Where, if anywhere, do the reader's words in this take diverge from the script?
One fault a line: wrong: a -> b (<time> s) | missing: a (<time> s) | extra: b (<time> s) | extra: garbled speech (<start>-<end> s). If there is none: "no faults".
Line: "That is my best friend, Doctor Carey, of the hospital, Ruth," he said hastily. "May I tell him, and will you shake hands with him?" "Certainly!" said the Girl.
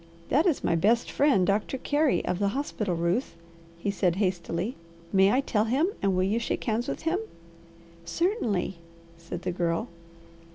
no faults